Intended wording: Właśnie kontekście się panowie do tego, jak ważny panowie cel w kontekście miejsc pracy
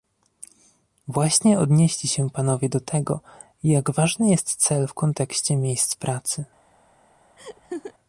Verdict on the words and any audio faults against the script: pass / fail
fail